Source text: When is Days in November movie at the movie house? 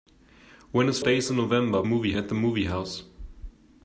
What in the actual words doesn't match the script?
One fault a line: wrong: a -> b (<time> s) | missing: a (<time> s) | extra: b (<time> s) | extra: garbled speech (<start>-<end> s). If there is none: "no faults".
no faults